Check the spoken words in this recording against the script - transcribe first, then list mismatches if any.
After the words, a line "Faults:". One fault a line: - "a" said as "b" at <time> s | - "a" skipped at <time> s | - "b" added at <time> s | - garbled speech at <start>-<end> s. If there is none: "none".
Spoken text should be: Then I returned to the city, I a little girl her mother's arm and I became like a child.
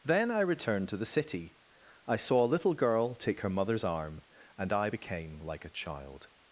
Then I returned to the city, I saw a little girl take her mother's arm and I became like a child.
Faults:
- "saw" added at 2.1 s
- "take" added at 3.1 s